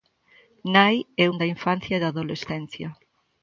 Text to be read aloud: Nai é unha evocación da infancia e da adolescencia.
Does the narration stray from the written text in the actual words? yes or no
yes